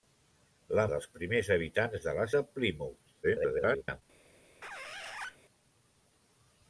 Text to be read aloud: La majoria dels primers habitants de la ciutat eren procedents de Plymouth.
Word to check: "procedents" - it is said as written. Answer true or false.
false